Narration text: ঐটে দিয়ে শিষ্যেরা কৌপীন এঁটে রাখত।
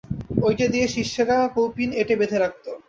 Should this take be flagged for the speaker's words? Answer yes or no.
yes